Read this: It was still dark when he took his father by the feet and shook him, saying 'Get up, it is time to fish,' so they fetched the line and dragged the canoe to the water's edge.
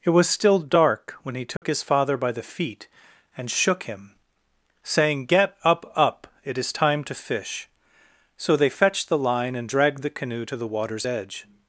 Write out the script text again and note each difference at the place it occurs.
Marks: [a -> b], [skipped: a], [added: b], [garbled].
It was still dark when he took his father by the feet and shook him, saying 'Get up, [added: up] it is time to fish,' so they fetched the line and dragged the canoe to the water's edge.